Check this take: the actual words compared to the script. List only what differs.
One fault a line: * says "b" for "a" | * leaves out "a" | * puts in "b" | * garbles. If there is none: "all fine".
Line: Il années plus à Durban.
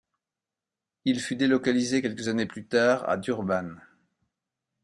* puts in "fut délocalisé quelques"
* puts in "tard"